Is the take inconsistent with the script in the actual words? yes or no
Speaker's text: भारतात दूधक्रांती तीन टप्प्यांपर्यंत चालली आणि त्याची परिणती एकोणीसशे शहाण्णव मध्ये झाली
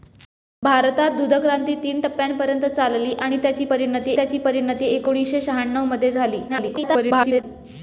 yes